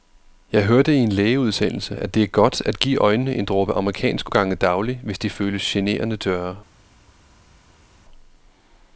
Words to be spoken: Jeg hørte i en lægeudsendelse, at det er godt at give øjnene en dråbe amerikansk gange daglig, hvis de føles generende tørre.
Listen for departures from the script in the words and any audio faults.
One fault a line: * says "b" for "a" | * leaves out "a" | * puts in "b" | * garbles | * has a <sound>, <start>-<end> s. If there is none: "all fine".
all fine